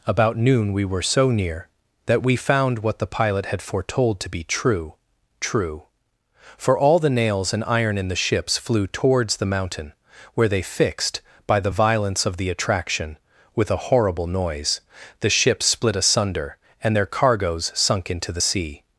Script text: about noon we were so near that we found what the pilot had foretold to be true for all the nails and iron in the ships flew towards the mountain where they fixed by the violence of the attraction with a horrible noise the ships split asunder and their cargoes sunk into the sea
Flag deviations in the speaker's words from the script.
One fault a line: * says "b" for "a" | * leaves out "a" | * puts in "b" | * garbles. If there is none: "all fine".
* puts in "true"